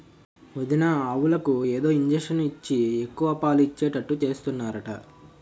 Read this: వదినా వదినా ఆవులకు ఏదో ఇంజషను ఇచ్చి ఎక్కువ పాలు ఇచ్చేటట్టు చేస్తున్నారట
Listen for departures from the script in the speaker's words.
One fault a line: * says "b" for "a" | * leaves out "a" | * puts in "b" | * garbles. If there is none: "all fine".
* leaves out "వదినా"